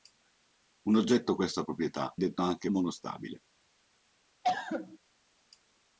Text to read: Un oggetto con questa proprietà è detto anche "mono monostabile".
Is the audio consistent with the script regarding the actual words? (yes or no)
no